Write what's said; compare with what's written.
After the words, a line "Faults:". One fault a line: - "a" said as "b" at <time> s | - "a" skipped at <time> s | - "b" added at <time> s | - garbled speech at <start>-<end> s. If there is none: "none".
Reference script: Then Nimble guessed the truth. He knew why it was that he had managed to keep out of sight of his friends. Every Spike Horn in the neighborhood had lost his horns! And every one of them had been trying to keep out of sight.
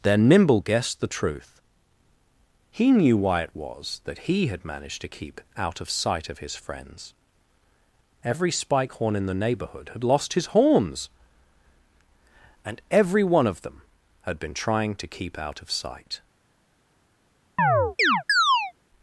Then Nimble guessed the truth. He knew why it was that he had managed to keep out of sight of his friends. Every Spike Horn in the neighborhood had lost his horns! And every one of them had been trying to keep out of sight.
Faults:
none